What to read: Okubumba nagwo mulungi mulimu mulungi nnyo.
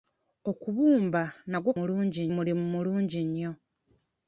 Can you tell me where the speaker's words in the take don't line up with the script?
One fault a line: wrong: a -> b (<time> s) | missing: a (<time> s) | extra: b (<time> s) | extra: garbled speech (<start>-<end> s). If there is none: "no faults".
no faults